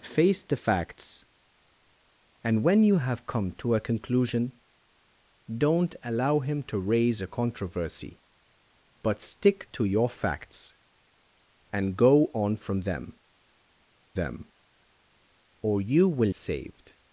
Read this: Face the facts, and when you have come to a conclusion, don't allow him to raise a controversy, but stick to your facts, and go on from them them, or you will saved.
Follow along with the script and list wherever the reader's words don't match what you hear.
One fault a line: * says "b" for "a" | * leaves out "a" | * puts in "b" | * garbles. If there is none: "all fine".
all fine